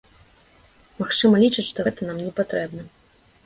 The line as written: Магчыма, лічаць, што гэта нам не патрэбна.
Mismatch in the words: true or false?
false